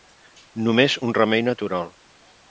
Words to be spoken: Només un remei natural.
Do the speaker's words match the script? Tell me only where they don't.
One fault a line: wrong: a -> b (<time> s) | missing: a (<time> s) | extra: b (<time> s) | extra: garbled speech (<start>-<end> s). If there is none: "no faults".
no faults